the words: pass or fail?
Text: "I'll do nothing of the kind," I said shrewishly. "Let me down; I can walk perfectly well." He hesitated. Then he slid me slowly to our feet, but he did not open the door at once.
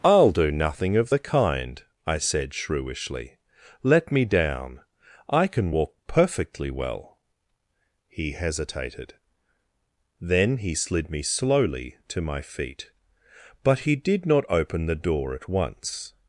fail